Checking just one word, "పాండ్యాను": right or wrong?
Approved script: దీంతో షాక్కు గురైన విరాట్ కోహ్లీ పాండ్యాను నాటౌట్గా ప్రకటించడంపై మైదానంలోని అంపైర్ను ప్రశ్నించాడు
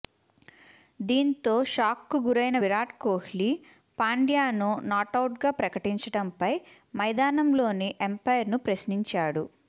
right